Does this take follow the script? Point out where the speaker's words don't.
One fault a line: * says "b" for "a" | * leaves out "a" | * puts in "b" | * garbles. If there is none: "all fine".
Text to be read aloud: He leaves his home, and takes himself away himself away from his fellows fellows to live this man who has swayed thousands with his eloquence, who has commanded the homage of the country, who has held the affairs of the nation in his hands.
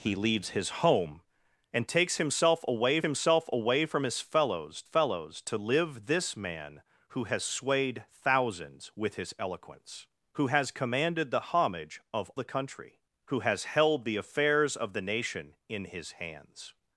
all fine